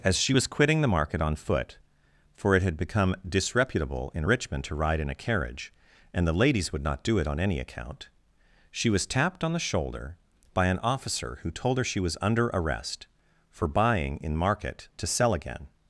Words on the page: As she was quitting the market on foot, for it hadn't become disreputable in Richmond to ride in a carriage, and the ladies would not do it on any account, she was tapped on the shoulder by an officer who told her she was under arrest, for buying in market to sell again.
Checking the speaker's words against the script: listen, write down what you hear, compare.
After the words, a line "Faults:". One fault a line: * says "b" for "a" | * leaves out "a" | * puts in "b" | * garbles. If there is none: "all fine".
As she was quitting the market on foot, for it had become disreputable in Richmond to ride in a carriage, and the ladies would not do it on any account, she was tapped on the shoulder by an officer who told her she was under arrest, for buying in market to sell again.
Faults:
* says "had" for "hadn't"